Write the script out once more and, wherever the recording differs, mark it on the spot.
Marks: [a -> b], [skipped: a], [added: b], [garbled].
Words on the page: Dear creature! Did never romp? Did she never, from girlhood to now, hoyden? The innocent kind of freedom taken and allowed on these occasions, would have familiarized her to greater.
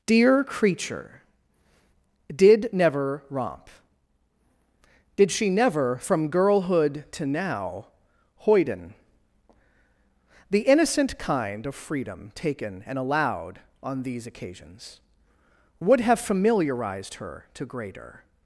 Dear creature! Did never romp? Did she never, from girlhood to now, hoyden? The innocent kind of freedom taken and allowed on these occasions, would have familiarized her to greater.